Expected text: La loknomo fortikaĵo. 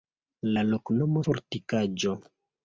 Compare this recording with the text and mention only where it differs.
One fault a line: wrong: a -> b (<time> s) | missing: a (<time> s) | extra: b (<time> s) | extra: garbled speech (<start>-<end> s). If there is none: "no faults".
no faults